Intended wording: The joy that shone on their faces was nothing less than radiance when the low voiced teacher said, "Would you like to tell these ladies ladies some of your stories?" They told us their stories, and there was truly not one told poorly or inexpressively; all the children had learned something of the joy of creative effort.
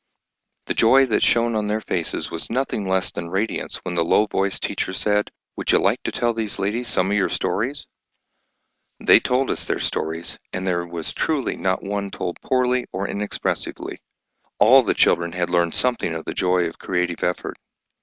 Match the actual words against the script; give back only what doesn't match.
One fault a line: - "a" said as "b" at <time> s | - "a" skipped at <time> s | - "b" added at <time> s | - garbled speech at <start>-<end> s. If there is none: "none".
- "ladies" skipped at 6.9 s